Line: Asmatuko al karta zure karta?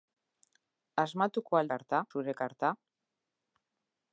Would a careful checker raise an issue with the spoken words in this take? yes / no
no